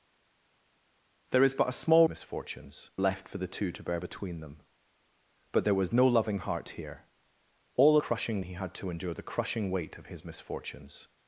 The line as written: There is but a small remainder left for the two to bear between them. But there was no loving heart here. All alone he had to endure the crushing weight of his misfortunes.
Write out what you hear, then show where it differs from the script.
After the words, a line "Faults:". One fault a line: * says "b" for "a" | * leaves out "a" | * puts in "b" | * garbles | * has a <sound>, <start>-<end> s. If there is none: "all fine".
There is but a small misfortunes left for the two to bear between them. But there was no loving heart here. All crushing he had to endure the crushing weight of his misfortunes.
Faults:
* says "misfortunes" for "remainder"
* says "crushing" for "alone"